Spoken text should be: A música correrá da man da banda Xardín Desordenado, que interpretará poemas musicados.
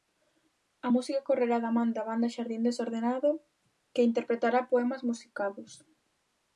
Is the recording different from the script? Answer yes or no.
no